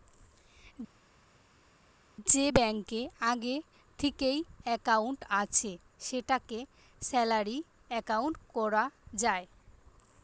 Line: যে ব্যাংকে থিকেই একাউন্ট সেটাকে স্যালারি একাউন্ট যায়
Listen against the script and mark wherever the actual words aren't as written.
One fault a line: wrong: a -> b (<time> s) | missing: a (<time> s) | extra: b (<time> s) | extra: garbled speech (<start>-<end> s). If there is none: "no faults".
extra: আগে (3.3 s)
extra: আছে (5.4 s)
extra: কোরা (8.5 s)